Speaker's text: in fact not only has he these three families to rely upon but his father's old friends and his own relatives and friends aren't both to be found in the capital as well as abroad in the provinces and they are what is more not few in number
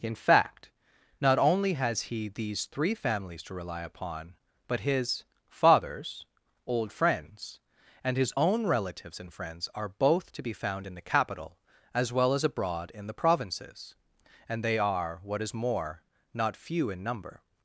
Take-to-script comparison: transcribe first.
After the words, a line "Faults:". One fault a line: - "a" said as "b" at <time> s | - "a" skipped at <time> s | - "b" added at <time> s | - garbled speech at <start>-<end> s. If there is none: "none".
in fact not only has he these three families to rely upon but his father's old friends and his own relatives and friends are both to be found in the capital as well as abroad in the provinces and they are what is more not few in number
Faults:
- "aren't" said as "are" at 9.7 s